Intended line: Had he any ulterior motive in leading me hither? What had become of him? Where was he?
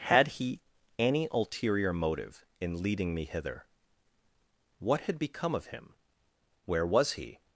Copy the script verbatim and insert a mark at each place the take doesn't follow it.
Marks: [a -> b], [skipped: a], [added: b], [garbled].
Had he any ulterior motive in leading me hither? What had become of him? Where was he?